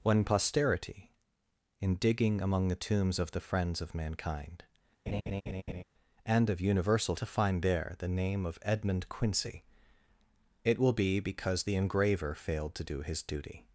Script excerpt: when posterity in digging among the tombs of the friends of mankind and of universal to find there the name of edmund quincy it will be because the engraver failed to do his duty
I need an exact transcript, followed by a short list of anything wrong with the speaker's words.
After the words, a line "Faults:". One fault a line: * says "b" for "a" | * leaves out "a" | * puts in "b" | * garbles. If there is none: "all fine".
when posterity in digging among the tombs of the friends of mankind and of universal to find there the name of edmund quincy it will be because the engraver failed to do his duty
Faults:
all fine